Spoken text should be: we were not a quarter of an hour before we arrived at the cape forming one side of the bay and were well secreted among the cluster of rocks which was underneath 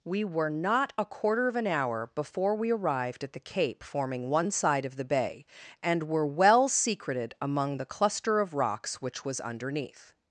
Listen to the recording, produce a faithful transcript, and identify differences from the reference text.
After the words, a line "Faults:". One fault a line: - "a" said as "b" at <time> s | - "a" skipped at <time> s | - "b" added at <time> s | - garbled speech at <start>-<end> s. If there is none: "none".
we were not a quarter of an hour before we arrived at the cape forming one side of the bay and were well secreted among the cluster of rocks which was underneath
Faults:
none